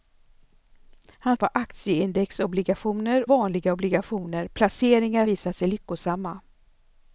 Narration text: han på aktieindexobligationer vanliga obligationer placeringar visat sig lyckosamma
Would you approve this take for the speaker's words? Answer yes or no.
yes